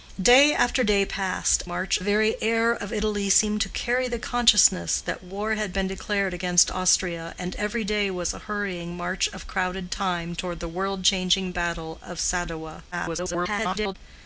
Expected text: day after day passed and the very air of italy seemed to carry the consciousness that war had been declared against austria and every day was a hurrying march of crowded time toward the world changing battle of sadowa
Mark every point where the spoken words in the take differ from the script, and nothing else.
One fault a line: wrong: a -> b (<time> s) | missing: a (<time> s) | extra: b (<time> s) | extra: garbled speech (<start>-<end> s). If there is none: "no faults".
wrong: and -> march (1.7 s)
extra: garbled speech (12.9-13.9 s)